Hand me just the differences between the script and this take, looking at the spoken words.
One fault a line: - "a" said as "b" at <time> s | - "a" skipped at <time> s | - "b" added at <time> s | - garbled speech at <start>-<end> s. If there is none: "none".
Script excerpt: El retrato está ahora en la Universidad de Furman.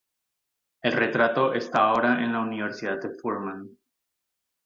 none